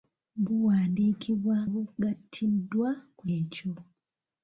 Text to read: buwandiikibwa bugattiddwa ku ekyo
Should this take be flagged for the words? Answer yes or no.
no